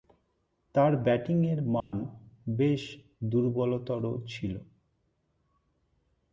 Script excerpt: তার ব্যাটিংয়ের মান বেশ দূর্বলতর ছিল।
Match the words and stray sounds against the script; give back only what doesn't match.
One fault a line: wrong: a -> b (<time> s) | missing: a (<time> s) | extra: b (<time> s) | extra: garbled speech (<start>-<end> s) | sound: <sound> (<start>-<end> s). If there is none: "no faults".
sound: dropout (1.8-1.9 s)